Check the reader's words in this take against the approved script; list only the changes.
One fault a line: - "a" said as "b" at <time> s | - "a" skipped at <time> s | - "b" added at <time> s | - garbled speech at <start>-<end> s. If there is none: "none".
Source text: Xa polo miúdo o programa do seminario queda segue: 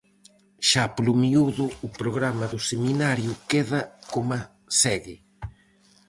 - "coma" added at 4.1 s